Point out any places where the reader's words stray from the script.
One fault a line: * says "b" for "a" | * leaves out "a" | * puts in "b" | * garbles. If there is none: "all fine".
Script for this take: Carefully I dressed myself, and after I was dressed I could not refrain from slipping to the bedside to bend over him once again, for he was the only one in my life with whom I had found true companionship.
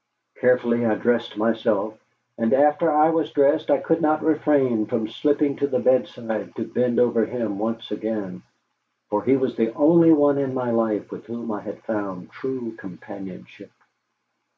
all fine